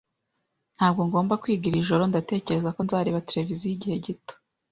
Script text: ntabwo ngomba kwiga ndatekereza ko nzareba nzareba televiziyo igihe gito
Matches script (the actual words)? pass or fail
fail